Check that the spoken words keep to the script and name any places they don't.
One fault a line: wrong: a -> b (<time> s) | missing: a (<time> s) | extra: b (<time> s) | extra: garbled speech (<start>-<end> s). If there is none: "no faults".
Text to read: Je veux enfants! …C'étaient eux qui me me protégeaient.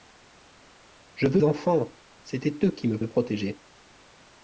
no faults